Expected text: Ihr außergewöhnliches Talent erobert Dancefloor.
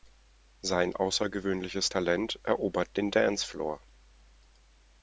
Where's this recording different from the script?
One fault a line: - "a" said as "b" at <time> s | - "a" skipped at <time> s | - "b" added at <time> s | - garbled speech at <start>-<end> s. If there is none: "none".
- "Ihr" said as "Sein" at 0.6 s
- "den" added at 3.0 s